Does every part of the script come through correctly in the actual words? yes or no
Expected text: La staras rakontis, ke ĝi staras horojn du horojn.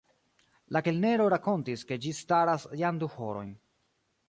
no